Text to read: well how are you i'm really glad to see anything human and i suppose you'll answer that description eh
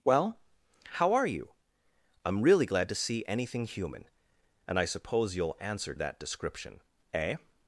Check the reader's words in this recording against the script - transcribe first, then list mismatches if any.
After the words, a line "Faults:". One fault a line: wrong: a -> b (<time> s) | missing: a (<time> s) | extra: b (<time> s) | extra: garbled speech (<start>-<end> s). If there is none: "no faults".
well how are you i'm really glad to see anything human and i suppose you'll answer that description eh
Faults:
no faults